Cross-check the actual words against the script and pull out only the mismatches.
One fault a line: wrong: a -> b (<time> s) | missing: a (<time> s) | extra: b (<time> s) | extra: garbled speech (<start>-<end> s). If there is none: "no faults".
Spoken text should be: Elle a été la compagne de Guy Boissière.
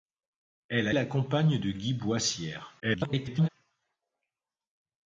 missing: été (0.9 s)
extra: garbled speech (2.8-3.5 s)